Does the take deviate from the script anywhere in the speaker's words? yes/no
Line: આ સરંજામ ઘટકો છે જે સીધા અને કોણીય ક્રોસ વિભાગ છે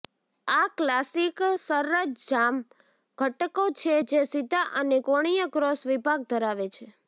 yes